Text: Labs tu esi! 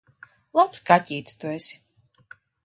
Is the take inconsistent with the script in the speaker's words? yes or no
yes